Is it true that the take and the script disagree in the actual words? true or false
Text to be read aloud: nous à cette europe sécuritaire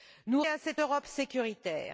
false